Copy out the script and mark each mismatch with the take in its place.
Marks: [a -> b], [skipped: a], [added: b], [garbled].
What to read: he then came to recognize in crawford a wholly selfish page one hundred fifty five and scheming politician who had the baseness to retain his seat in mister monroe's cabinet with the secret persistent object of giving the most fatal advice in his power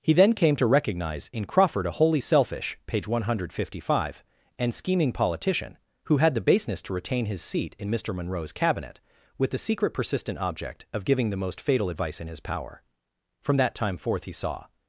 he then came to recognize in crawford a wholly selfish page one hundred fifty five and scheming politician who had the baseness to retain his seat in mister monroe's cabinet with the secret persistent object of giving the most fatal advice in his power [added: from that time forth he saw]